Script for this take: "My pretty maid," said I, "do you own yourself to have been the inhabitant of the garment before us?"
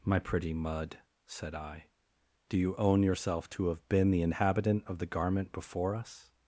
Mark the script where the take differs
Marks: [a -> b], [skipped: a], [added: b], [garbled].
"My pretty [maid," -> mud] said I, "do you own yourself to have been the inhabitant of the garment before us?"